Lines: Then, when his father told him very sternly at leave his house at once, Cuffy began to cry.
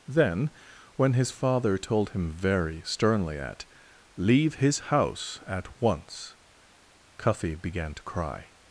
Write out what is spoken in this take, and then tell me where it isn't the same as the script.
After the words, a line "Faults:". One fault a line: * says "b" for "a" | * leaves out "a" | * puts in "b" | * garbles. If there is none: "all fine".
Then, when his father told him very sternly at leave his house at once, Cuffy began to cry.
Faults:
all fine